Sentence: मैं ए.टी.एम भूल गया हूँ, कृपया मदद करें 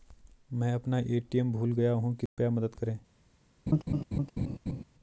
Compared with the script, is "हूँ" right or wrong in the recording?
right